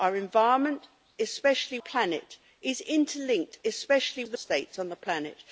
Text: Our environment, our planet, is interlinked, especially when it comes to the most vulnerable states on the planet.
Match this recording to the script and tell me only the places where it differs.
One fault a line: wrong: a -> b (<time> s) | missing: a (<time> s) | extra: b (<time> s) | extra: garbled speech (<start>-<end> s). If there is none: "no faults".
wrong: our -> especially (1.2 s)
missing: when it comes (4.2 s)
missing: most vulnerable (4.4 s)